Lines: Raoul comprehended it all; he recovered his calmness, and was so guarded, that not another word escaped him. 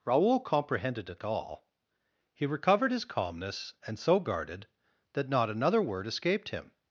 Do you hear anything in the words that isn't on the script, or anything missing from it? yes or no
yes